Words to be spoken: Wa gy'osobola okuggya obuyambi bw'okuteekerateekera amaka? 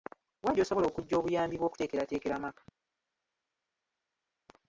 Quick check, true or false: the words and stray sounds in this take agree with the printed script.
true